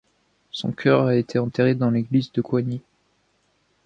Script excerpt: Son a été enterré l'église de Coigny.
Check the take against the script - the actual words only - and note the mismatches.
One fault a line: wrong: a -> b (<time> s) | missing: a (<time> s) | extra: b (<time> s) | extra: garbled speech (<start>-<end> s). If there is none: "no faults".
extra: cœur (0.7 s)
extra: dans (1.8 s)